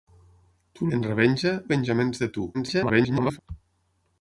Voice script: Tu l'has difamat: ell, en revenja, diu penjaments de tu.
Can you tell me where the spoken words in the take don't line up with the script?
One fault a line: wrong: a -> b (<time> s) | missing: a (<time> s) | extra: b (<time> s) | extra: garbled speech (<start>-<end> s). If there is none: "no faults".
missing: l'has difamat ell (0.9 s)
missing: diu (1.5 s)
extra: garbled speech (2.5-3.4 s)